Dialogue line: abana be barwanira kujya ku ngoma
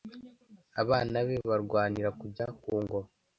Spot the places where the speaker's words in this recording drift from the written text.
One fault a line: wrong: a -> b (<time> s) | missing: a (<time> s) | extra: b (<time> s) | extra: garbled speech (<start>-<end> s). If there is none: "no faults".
no faults